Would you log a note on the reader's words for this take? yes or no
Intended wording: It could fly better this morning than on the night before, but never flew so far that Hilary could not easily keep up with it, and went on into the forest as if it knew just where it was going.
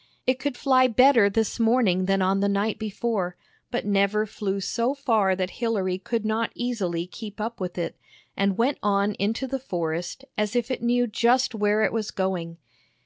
no